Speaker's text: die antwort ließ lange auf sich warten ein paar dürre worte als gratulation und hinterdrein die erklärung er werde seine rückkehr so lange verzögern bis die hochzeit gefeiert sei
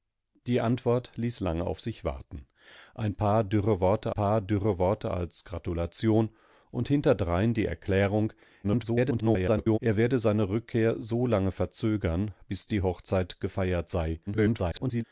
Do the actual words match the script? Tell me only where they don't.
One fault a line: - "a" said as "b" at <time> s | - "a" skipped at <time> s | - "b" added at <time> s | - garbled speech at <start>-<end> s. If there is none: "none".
- "paar dürre worte" added at 4.1 s
- garbled speech at 8.6-9.8 s
- garbled speech at 14.3-15.0 s